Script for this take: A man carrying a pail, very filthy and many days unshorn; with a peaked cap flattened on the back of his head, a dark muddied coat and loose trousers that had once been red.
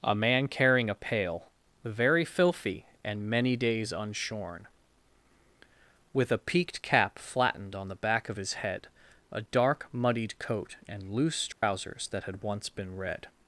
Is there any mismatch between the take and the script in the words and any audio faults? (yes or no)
yes